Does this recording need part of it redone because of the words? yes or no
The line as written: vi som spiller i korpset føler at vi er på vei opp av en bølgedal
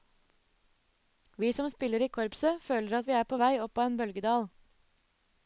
no